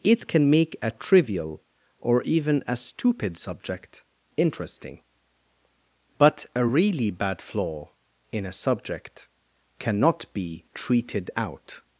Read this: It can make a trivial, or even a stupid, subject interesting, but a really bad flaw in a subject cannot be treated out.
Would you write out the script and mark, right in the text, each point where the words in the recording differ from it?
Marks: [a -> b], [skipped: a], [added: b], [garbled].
It can make a trivial, or even a stupid, subject interesting, but a really bad flaw in a subject cannot be treated out.